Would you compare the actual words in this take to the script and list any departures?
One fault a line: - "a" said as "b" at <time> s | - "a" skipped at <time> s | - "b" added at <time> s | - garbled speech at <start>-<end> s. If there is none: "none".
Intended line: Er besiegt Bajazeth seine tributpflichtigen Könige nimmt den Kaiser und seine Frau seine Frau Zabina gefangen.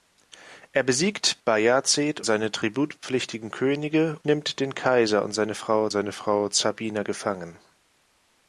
none